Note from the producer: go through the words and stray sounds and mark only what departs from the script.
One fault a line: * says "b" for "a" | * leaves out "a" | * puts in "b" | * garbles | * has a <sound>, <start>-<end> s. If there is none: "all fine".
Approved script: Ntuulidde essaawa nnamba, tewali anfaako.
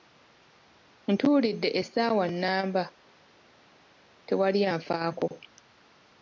all fine